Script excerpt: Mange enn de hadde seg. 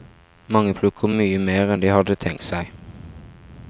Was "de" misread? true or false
false